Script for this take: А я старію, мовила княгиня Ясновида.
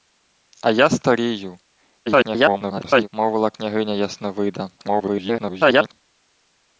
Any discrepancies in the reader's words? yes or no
yes